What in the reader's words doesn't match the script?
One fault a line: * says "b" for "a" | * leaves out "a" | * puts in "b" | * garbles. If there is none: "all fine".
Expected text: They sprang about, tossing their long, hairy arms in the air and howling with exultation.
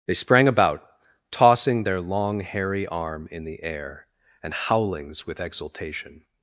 * says "arm" for "arms"
* says "howlings" for "howling"